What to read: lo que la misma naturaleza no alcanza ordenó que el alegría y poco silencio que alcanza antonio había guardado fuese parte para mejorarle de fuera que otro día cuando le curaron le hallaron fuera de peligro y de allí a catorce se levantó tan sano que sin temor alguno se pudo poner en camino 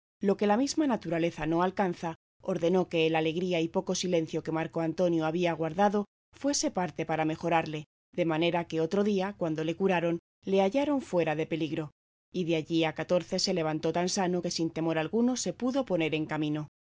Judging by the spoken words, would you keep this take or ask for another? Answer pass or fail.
fail